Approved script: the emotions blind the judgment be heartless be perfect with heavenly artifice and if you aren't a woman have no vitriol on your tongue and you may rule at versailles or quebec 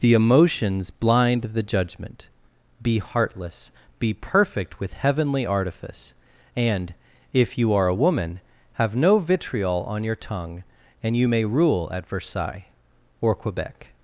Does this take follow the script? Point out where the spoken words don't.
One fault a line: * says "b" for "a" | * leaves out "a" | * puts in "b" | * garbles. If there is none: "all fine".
* says "are" for "aren't"